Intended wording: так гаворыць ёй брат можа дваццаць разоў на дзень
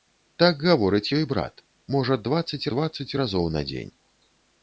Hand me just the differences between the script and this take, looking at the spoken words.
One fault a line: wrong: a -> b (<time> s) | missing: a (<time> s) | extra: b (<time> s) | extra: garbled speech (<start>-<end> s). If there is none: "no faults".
extra: дваццаць (2.7 s)